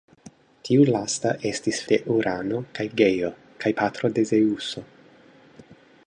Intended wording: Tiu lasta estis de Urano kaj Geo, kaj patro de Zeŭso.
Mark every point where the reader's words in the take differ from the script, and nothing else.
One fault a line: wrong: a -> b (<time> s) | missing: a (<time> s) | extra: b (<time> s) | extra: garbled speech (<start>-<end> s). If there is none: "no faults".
no faults